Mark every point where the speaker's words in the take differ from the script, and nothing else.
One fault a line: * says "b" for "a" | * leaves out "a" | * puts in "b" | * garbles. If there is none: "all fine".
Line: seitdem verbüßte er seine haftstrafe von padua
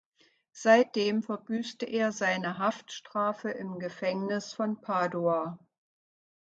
* puts in "im gefängnis"